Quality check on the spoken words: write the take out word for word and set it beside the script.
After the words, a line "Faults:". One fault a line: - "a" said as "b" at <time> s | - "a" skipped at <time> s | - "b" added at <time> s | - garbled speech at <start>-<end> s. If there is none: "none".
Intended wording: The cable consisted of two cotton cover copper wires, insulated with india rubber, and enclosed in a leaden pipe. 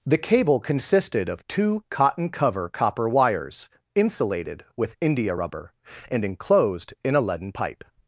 The cable consisted of two cotton cover copper wires, insulated with india rubber, and enclosed in a leaden pipe.
Faults:
none